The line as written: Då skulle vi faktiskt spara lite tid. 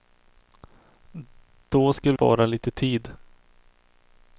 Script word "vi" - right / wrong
wrong